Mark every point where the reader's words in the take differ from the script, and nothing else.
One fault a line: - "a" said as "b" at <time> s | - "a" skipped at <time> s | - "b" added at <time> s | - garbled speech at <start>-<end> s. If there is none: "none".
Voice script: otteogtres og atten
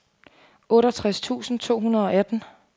- "tusind to hundrede" added at 1.2 s